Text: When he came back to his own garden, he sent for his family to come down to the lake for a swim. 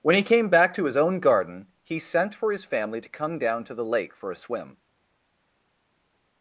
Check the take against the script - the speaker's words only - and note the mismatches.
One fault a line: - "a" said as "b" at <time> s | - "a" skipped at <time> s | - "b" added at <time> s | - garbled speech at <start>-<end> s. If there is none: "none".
none